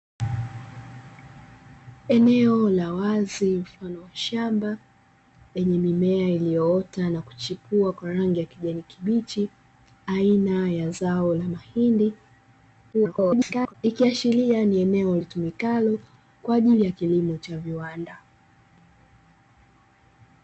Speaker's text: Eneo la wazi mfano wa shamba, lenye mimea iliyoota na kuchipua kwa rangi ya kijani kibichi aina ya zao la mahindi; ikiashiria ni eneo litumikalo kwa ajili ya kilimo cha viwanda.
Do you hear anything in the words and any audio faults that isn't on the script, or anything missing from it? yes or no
yes